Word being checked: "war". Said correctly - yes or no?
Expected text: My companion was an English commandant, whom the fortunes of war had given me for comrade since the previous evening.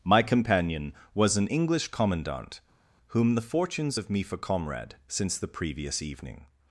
no